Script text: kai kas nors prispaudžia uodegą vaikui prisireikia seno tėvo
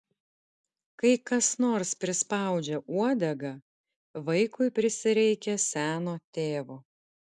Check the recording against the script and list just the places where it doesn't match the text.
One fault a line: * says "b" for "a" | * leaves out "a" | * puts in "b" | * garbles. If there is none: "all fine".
all fine